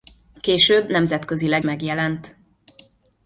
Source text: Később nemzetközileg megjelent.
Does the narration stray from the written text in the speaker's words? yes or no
no